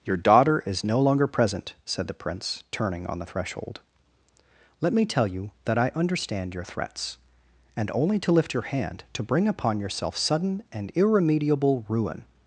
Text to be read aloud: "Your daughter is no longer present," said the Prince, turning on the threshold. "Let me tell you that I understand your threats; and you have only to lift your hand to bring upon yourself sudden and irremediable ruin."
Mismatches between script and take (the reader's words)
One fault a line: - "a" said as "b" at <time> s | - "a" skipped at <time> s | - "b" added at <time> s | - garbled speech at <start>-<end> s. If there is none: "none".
- "you have" skipped at 7.9 s